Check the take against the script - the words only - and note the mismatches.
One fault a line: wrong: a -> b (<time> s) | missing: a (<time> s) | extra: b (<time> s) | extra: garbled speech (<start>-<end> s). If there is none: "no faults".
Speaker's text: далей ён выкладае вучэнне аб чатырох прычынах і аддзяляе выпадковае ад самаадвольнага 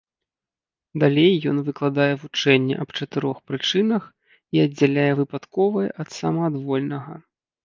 no faults